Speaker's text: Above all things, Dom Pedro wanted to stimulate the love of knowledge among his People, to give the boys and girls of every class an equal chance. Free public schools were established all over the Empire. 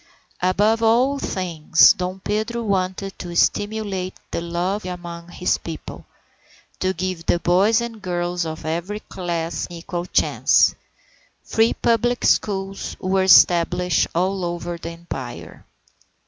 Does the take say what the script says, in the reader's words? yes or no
no